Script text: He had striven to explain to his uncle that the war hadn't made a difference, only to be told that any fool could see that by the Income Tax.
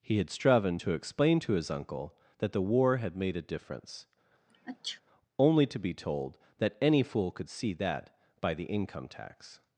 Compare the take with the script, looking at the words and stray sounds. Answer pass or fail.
fail